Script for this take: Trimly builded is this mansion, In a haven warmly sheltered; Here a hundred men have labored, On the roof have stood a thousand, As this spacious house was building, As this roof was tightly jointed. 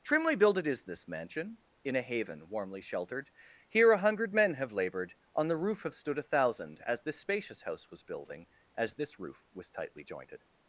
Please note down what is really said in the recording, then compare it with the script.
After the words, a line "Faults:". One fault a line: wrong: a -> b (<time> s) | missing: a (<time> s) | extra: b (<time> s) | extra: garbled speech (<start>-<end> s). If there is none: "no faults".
Trimly builded is this mansion, In a haven warmly sheltered; Here a hundred men have labored, On the roof have stood a thousand, As this spacious house was building, As this roof was tightly jointed.
Faults:
no faults